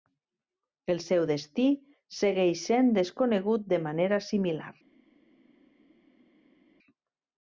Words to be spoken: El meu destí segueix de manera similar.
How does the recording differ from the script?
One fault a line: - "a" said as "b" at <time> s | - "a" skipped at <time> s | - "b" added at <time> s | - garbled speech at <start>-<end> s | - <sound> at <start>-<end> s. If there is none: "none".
- "meu" said as "seu" at 1.1 s
- "sent desconegut" added at 2.7 s